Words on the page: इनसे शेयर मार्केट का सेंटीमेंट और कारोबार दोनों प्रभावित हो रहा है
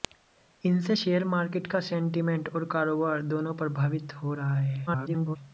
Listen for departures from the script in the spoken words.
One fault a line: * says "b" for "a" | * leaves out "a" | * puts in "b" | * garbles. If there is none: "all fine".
* garbles